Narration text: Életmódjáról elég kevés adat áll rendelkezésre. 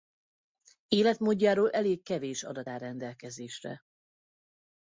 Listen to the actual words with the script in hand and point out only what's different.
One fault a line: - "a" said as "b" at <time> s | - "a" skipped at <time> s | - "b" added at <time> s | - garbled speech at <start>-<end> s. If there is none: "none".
none